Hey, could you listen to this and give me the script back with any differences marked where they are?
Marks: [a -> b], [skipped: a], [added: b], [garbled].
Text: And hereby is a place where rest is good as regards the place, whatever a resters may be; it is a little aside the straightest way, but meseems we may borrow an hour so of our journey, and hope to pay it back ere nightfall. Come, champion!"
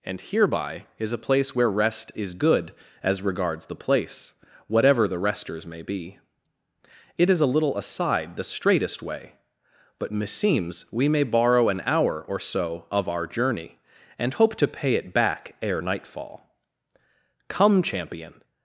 And hereby is a place where rest is good as regards the place, whatever [a -> the] resters may be; it is a little aside the straightest way, but meseems we may borrow an hour [added: or] so of our journey, and hope to pay it back ere nightfall. Come, champion!"